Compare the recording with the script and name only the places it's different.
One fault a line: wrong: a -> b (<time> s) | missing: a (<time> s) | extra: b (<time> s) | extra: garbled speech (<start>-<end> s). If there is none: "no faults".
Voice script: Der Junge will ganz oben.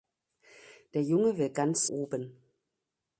no faults